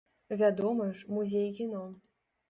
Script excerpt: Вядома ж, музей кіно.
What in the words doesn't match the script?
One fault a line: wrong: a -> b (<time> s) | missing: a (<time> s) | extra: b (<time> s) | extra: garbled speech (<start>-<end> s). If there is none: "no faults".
no faults